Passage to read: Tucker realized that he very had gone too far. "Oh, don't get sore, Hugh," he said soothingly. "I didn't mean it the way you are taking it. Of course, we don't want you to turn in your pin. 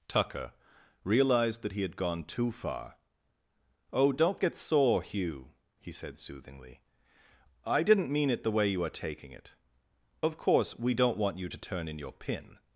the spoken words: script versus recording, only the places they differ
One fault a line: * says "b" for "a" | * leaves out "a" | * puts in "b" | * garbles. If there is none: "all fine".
* leaves out "very"